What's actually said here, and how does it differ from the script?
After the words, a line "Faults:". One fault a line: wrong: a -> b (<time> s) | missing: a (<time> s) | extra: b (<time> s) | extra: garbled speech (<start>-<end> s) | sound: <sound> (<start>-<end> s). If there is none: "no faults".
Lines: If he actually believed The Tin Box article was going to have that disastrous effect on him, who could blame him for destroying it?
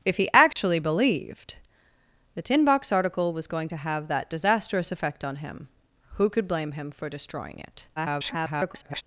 If he actually believed The Tin Box article was going to have that disastrous effect on him, who could blame him for destroying it? [garbled]
Faults:
sound: dropout (0.5-0.6 s)
extra: garbled speech (8.0-9.0 s)